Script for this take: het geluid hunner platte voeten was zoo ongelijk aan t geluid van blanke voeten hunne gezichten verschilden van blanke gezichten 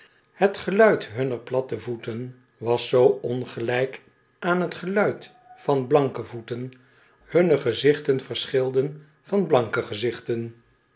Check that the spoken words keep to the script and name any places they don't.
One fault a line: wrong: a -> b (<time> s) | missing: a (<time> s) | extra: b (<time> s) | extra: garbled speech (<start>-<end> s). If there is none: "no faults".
no faults